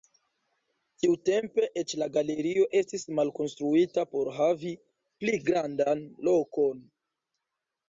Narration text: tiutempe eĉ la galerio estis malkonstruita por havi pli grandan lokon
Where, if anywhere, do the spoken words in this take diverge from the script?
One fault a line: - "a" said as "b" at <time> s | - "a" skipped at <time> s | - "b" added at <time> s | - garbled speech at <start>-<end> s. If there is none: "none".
none